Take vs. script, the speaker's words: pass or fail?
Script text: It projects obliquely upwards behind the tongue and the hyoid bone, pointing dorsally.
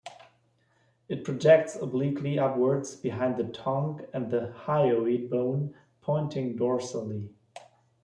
pass